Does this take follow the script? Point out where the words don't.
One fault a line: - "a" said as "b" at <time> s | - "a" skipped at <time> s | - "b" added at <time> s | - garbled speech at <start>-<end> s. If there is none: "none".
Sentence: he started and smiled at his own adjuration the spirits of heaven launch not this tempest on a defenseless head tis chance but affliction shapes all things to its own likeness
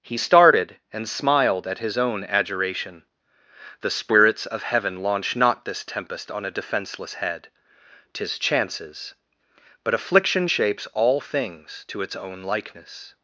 - "chance" said as "chances" at 8.4 s